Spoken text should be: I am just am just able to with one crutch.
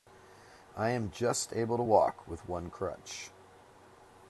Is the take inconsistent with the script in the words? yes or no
yes